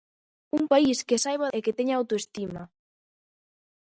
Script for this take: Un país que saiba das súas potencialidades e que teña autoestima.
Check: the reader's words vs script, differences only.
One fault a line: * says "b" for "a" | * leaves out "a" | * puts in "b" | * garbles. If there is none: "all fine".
* leaves out "das súas potencialidades"